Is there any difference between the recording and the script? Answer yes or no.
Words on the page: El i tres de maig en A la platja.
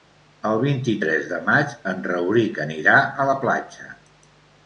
yes